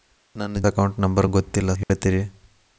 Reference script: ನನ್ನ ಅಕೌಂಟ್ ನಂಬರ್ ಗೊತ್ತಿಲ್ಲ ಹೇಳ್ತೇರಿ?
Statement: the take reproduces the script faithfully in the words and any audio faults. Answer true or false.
false